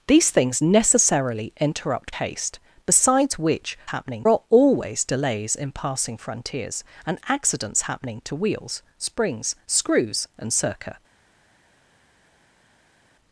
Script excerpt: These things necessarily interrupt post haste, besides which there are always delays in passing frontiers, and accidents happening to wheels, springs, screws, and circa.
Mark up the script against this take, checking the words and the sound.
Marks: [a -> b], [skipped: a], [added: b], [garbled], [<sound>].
These things necessarily interrupt [skipped: post] haste, besides which [there -> happening] are always delays in passing frontiers, and accidents happening to wheels, springs, screws, and circa.